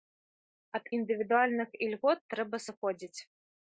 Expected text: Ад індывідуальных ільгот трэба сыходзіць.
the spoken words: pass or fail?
pass